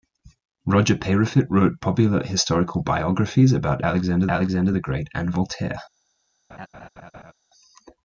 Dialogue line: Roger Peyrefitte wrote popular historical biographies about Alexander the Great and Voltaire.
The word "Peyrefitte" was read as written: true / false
true